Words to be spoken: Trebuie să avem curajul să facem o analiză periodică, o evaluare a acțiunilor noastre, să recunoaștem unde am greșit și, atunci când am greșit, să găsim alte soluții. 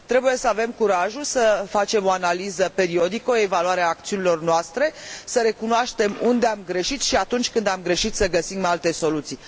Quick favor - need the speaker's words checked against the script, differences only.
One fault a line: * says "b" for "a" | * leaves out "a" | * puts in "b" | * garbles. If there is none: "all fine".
all fine